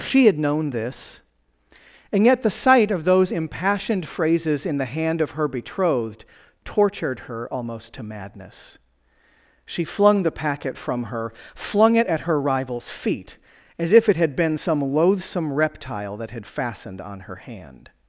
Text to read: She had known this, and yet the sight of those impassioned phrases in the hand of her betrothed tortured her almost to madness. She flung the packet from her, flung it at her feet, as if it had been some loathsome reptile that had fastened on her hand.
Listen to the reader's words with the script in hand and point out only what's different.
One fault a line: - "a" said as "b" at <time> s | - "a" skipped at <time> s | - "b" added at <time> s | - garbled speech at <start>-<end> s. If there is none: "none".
- "rival's" added at 12.4 s